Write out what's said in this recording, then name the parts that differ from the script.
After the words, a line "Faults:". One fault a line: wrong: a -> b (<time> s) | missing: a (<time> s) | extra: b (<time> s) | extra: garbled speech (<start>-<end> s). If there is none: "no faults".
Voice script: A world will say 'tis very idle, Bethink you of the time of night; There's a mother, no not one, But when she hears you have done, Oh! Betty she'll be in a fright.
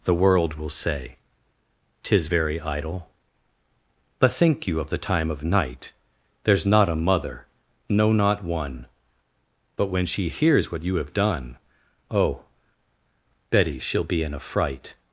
The world will say 'tis very idle, Bethink you of the time of night; There's not a mother, no not one, But when she hears what you have done, Oh! Betty she'll be in a fright.
Faults:
wrong: A -> The (0.0 s)
extra: not (6.7 s)
extra: what (10.7 s)